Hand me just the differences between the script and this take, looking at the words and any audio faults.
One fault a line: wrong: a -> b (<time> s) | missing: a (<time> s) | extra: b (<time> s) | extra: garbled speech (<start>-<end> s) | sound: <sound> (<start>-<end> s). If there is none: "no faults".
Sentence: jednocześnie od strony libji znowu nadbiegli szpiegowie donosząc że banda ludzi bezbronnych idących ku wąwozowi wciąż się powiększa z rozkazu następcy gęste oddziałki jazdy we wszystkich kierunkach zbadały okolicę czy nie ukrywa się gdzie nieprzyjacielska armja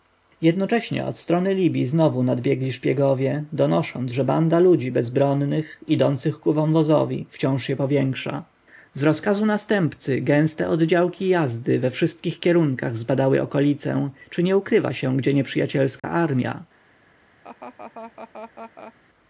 sound: dropout (16.0-16.0 s)
sound: laugh (17.4-18.9 s)